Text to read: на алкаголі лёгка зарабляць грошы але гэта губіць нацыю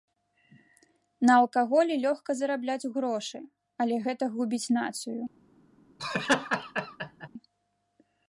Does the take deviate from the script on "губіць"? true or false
false